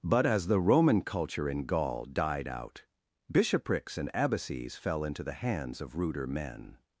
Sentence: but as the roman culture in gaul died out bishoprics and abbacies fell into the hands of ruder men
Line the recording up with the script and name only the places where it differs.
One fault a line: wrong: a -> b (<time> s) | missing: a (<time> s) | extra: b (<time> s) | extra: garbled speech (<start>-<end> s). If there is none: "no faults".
no faults